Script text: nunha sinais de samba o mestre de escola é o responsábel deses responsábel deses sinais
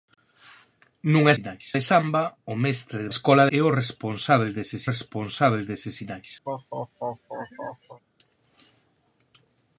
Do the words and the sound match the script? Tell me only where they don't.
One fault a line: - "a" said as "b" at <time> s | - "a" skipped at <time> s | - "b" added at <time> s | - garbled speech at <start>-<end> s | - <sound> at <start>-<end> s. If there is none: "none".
- laugh at 6.5-8.0 s